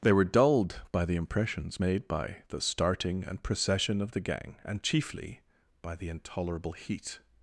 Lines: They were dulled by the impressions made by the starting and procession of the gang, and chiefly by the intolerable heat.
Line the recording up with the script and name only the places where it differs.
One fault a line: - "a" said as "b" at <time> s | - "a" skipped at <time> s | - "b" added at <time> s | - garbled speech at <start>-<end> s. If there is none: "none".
none